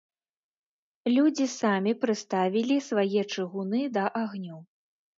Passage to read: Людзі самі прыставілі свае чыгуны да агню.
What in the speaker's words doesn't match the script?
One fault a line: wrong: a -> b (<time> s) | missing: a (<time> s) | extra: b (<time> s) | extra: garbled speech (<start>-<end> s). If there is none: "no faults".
no faults